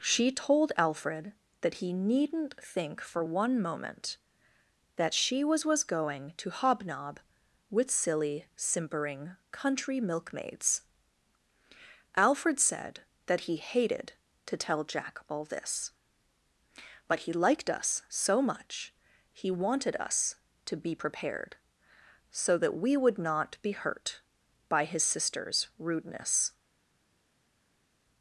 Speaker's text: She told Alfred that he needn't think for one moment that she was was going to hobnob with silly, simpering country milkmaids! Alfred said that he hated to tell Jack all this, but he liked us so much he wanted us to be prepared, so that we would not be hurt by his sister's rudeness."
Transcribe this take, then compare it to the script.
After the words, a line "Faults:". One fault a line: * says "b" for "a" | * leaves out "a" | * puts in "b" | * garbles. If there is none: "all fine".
She told Alfred that he needn't think for one moment that she was was going to hobnob with silly, simpering country milkmaids! Alfred said that he hated to tell Jack all this, but he liked us so much he wanted us to be prepared, so that we would not be hurt by his sister's rudeness."
Faults:
all fine